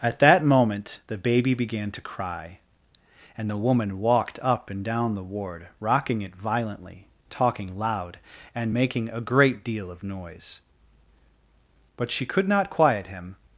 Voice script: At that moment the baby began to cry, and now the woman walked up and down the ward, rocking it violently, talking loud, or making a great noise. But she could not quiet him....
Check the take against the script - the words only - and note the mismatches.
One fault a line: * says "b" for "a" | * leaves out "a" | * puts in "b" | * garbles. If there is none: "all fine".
* leaves out "now"
* says "and" for "or"
* puts in "deal of"